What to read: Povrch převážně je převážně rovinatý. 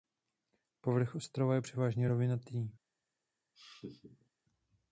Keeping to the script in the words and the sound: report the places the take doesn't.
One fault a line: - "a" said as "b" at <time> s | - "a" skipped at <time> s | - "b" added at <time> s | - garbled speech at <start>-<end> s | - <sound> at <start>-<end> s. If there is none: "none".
- "převážně" said as "ostrova" at 1.1 s
- laugh at 3.5-4.3 s